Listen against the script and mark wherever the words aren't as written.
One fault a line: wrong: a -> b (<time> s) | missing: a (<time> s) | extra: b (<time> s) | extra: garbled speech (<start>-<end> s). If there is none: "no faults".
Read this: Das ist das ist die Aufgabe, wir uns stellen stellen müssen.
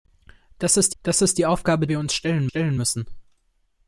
no faults